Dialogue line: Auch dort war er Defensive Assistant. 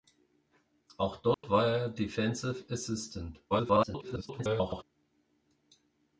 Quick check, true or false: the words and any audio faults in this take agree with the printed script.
false